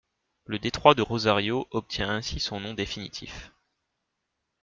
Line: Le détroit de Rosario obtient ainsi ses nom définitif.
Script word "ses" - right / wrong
wrong